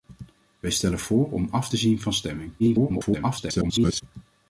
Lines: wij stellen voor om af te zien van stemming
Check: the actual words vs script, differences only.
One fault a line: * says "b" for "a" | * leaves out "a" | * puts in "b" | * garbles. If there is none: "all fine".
* garbles